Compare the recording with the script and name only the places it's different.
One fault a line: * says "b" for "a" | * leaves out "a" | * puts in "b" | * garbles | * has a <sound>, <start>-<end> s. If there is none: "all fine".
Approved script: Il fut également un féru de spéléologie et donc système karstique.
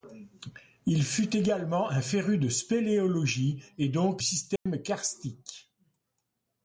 * has a dropout, 4.6-4.7 s